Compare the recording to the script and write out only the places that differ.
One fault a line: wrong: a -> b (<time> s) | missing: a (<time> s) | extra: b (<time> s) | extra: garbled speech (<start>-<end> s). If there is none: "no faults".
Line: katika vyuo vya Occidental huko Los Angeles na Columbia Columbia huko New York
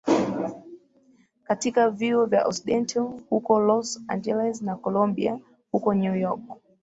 missing: Columbia (5.4 s)